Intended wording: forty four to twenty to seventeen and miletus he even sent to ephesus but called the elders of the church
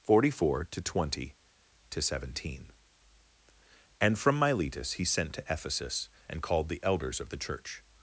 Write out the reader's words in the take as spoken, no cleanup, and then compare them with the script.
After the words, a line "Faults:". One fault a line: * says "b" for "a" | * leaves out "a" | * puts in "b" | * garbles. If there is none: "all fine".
forty four to twenty to seventeen and from miletus he sent to ephesus and called the elders of the church
Faults:
* puts in "from"
* leaves out "even"
* says "and" for "but"